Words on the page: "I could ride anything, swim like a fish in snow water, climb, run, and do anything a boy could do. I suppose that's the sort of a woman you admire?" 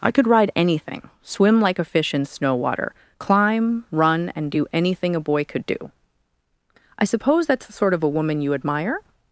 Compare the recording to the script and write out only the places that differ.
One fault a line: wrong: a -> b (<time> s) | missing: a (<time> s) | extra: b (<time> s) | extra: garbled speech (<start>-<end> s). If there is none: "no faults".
no faults